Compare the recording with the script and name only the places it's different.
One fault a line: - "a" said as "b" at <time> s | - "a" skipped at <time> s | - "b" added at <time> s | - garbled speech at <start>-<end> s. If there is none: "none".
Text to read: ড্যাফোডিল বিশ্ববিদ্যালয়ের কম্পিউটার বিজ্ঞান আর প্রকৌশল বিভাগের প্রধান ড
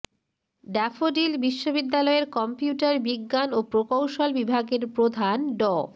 - "আর" said as "ও" at 3.5 s